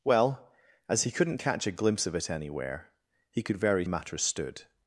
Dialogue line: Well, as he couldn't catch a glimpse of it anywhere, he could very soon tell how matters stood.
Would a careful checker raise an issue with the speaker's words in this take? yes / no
yes